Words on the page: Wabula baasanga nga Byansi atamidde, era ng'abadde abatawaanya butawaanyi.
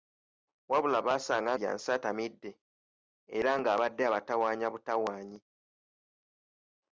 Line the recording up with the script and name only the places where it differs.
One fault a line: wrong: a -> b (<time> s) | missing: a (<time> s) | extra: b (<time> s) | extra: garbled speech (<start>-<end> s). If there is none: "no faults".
missing: nga (1.5 s)